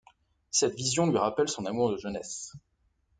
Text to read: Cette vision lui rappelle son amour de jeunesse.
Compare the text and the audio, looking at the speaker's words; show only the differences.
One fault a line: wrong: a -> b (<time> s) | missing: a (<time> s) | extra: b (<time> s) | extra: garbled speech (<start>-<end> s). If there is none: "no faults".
no faults